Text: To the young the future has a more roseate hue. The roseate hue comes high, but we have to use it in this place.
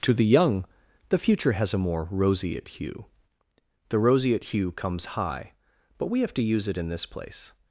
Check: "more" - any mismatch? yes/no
no